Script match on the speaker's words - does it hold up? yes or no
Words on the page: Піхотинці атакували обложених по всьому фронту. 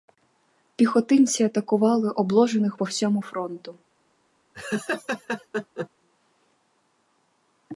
yes